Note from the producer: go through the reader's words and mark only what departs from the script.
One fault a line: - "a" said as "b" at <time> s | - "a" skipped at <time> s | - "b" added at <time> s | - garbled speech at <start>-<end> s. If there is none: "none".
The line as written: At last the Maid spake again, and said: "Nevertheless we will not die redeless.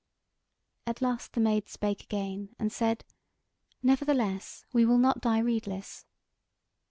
none